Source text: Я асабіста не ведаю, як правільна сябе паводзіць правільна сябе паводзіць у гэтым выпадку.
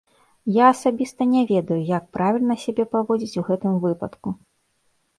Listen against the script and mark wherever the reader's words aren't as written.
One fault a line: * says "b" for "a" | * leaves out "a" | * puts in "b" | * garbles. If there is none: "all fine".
* leaves out "правільна сябе паводзіць"